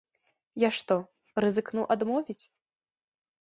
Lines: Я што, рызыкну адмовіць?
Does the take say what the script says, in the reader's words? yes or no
yes